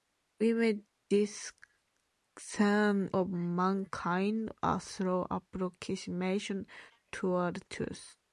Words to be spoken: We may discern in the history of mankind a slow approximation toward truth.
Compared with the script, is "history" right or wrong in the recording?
wrong